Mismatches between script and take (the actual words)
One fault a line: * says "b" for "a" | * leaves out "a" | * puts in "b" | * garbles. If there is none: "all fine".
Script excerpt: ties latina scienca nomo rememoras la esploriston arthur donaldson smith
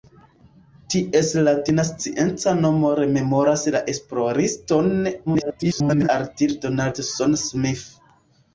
* garbles